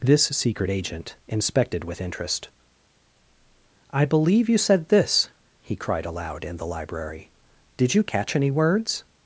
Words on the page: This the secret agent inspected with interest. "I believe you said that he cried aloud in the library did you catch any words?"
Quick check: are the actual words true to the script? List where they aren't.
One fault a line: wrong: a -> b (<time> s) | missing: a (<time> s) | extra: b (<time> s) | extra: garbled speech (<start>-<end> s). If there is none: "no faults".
missing: the (0.2 s)
wrong: that -> this (4.9 s)